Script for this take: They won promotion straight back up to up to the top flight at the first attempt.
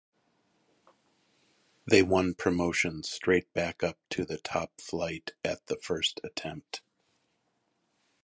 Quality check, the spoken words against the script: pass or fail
fail